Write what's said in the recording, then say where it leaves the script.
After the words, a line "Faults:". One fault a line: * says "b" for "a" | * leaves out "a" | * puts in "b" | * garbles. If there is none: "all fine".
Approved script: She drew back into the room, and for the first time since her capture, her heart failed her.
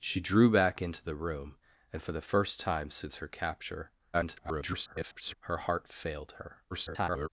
She drew back into the room, and for the first time since her capture, [garbled] her heart failed her. [garbled]
Faults:
* garbles
* garbles